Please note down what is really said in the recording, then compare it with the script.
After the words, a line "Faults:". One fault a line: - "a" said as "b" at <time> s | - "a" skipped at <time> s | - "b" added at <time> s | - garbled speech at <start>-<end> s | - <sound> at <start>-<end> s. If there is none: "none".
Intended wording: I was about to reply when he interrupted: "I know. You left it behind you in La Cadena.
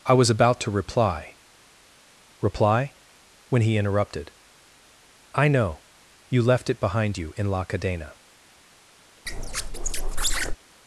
I was about to reply reply when he interrupted: "I know. You left it behind you in La Cadena.
Faults:
- "reply" added at 2.4 s
- squeak at 9.3-10.6 s